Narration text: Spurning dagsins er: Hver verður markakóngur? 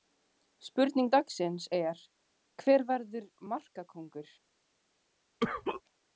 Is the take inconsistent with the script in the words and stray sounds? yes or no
yes